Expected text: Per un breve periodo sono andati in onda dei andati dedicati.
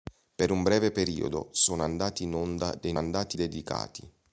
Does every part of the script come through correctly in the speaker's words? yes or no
yes